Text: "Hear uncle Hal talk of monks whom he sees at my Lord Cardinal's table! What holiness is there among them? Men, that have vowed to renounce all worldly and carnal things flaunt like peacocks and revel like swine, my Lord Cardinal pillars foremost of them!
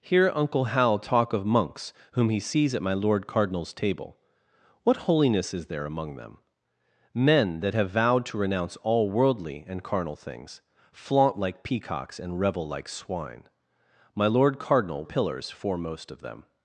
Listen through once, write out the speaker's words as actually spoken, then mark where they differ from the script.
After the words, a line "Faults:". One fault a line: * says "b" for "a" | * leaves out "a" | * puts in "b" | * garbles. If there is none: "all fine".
"Hear uncle Hal talk of monks whom he sees at my Lord Cardinal's table! What holiness is there among them? Men, that have vowed to renounce all worldly and carnal things flaunt like peacocks and revel like swine, my Lord Cardinal pillars foremost of them!
Faults:
all fine